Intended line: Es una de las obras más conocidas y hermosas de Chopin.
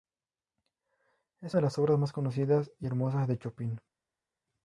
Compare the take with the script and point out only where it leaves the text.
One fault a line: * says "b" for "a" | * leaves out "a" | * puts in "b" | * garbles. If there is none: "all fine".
* leaves out "una"